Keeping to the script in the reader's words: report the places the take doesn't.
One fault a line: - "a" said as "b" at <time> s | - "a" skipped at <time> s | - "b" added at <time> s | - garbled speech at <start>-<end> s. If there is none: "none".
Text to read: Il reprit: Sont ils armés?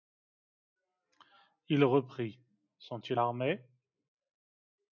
none